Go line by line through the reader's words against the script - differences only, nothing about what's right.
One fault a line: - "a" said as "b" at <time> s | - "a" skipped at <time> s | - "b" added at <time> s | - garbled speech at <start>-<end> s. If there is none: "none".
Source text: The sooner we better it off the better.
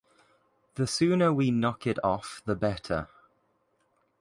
- "better" said as "knock" at 1.5 s